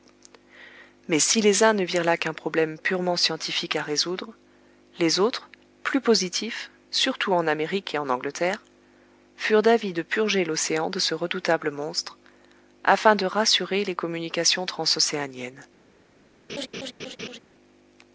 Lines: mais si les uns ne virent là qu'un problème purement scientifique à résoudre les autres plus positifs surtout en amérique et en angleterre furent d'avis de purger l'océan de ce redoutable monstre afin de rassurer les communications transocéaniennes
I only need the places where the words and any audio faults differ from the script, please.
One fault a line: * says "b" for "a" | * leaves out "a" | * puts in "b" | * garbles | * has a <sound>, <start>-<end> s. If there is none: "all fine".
* has a laugh, 16.5-17.4 s